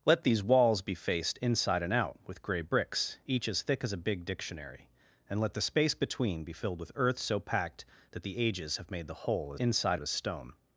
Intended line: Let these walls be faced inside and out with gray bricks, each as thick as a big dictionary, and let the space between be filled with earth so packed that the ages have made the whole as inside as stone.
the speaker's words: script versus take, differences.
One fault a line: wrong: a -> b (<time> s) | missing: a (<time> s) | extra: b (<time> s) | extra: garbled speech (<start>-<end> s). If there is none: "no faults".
no faults